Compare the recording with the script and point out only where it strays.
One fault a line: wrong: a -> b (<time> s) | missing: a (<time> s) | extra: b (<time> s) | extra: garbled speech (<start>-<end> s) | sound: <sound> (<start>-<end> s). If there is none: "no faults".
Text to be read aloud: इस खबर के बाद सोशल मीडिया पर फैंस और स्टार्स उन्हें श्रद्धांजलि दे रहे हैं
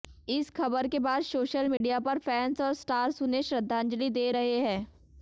sound: dropout (1.8-1.8 s)